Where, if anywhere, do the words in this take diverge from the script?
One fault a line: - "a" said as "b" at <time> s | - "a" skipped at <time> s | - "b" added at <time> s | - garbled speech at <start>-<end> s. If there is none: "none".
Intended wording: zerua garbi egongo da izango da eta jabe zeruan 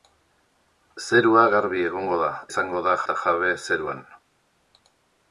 none